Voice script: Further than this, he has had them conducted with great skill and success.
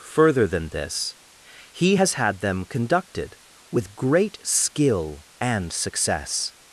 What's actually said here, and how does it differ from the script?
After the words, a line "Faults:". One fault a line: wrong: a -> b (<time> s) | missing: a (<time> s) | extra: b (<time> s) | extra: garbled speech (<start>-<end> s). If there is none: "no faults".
Further than this, he has had them conducted with great skill and success.
Faults:
no faults